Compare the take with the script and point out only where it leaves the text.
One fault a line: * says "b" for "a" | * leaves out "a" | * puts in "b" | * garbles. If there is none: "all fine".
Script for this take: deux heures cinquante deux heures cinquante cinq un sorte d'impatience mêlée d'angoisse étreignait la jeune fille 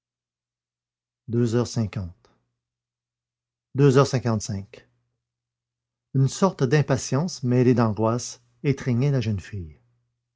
* says "une" for "un"